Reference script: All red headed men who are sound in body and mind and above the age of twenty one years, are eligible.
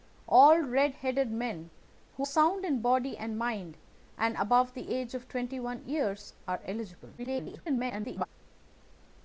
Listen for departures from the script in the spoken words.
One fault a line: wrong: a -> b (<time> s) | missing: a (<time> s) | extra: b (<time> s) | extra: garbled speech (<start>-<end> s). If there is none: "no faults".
missing: are (2.3 s)
extra: garbled speech (7.2-8.3 s)